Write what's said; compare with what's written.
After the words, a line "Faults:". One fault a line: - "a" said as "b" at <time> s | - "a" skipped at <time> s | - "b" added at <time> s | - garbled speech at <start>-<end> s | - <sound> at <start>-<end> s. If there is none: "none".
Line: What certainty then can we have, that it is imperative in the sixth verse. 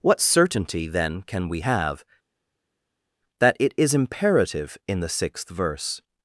What certainty then can we have, that it is imperative in the sixth verse.
Faults:
none